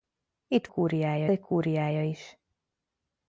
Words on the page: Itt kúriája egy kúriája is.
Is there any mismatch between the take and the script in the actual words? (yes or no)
no